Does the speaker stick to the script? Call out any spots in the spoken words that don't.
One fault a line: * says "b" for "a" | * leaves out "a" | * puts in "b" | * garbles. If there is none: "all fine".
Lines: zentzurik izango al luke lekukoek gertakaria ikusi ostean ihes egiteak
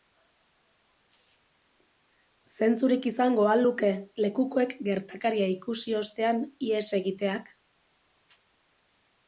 all fine